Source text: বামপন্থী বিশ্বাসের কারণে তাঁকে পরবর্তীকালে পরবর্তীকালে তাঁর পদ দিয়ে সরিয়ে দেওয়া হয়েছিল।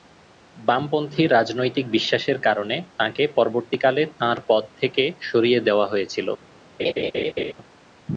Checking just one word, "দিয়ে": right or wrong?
wrong